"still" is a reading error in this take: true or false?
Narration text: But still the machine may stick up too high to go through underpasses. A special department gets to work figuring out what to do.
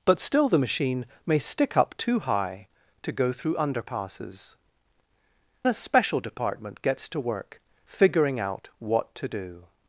false